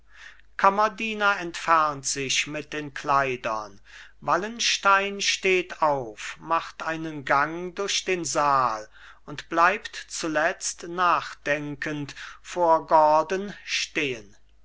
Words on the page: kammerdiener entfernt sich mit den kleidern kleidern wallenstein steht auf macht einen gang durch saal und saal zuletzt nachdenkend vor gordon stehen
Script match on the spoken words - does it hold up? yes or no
no